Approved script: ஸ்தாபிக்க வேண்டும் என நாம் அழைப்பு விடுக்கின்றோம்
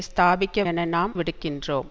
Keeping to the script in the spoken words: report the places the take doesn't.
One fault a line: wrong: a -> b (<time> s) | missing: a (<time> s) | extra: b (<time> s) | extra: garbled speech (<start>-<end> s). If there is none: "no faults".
missing: வேண்டும் (0.7 s)
missing: அழைப்பு (1.2 s)